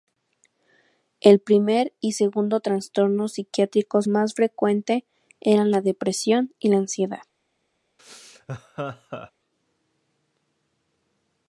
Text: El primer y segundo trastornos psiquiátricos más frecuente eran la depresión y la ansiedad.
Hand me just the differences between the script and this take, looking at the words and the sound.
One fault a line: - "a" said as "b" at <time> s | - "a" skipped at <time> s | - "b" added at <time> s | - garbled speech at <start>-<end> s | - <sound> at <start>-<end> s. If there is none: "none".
- laugh at 8.0-9.3 s